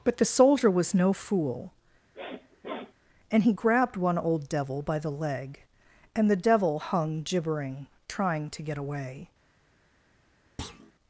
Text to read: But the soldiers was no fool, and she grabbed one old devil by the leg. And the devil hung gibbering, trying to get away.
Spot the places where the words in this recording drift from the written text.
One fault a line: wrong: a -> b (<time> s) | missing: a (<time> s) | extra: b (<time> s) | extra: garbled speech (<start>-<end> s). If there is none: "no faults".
wrong: soldiers -> soldier (0.2 s)
wrong: she -> he (3.4 s)